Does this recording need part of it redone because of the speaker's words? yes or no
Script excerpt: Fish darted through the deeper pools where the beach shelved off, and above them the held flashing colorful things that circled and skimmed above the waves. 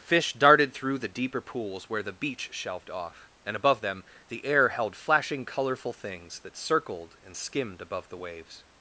yes